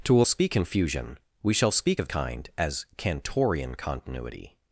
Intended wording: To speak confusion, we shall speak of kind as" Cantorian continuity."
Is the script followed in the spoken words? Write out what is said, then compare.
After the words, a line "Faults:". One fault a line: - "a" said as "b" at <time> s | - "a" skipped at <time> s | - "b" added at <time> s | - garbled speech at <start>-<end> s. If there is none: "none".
To speak confusion, we shall speak of kind as" Cantorian continuity."
Faults:
none